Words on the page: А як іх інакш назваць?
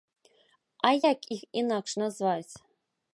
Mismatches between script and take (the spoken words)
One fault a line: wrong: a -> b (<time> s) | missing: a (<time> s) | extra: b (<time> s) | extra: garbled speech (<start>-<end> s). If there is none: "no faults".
no faults